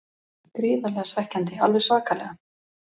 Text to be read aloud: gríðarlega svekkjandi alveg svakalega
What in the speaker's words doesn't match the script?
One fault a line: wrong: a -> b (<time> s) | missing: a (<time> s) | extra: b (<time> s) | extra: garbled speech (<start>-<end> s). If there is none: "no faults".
no faults